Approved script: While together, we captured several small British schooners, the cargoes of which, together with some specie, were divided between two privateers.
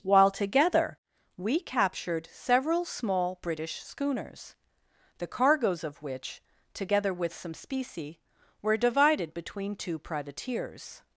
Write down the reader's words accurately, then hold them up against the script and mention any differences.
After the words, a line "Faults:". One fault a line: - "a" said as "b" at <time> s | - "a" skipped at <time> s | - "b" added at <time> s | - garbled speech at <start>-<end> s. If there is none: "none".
While together, we captured several small British schooners, the cargoes of which, together with some specie, were divided between two privateers.
Faults:
none